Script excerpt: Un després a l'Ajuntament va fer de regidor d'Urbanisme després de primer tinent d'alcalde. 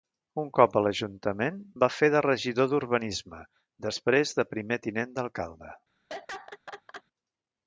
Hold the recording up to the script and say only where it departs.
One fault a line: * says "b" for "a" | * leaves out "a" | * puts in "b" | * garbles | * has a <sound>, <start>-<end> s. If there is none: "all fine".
* says "cop" for "després"
* has a laugh, 6.1-7.0 s